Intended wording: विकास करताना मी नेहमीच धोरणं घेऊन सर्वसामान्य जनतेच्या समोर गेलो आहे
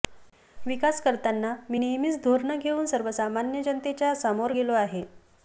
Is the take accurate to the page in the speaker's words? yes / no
yes